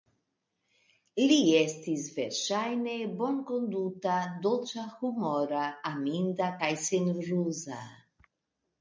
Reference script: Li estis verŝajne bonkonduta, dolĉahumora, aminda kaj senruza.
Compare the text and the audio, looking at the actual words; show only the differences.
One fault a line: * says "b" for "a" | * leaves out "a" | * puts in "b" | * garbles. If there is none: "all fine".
all fine